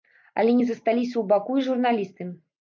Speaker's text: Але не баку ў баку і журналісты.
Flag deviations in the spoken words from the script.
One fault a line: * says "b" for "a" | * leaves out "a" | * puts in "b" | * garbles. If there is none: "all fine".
* says "засталіся" for "баку"